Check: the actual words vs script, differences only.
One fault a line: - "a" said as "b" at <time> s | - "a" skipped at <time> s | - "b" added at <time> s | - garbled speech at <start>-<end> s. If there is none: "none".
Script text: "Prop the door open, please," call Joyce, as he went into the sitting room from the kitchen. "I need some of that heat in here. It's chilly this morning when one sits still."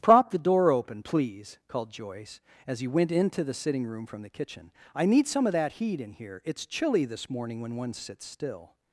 - "call" said as "called" at 1.7 s